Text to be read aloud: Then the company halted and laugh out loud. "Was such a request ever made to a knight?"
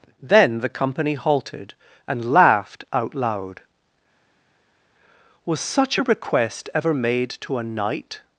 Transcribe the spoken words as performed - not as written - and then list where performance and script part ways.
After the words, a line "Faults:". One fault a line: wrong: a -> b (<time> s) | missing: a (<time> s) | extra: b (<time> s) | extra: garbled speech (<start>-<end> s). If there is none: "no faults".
Then the company halted and laughed out loud. "Was such a request ever made to a knight?"
Faults:
wrong: laugh -> laughed (2.3 s)